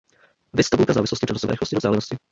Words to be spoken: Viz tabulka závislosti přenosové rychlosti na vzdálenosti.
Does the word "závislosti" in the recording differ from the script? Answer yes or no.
no